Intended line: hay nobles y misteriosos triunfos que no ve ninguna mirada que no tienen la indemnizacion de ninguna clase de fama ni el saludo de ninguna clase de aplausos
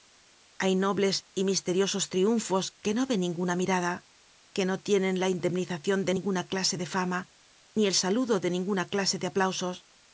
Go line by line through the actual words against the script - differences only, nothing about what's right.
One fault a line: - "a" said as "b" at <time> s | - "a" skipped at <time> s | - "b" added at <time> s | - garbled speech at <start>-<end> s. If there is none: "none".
none